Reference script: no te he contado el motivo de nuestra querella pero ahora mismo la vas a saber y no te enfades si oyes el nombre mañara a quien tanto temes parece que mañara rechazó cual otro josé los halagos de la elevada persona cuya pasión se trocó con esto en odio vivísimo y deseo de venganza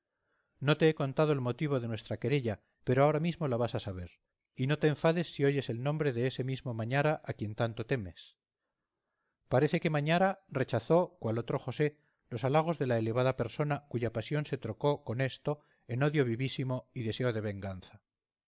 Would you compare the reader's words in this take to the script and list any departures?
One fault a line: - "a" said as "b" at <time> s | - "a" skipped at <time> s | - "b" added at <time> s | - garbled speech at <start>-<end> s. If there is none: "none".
- "de ese mismo" added at 6.1 s